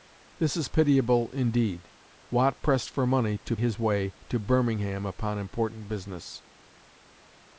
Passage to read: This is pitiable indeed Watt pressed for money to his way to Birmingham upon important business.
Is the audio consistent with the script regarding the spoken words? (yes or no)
yes